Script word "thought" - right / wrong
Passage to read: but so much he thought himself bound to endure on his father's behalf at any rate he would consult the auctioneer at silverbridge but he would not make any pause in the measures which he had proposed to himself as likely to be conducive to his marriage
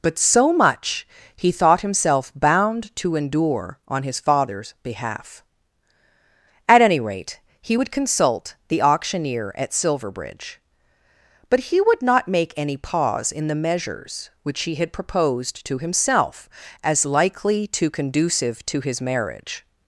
right